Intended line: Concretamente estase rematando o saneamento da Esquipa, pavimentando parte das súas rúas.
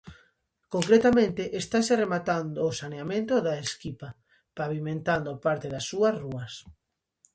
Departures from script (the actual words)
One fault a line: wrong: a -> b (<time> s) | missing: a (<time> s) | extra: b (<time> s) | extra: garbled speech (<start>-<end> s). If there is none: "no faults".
no faults